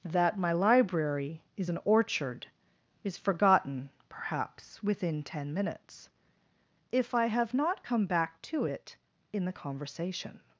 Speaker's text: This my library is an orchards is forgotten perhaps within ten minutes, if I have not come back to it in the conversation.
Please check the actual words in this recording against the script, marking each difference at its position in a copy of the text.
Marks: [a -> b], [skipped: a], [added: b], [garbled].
[This -> That] my library is an [orchards -> orchard] is forgotten perhaps within ten minutes, if I have not come back to it in the conversation.